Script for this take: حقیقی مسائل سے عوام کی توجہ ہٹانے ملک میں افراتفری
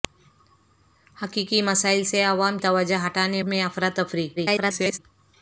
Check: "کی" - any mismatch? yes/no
yes